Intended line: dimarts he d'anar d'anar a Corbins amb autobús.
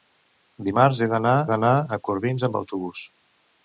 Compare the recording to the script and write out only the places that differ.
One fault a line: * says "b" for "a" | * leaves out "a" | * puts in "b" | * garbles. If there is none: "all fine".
all fine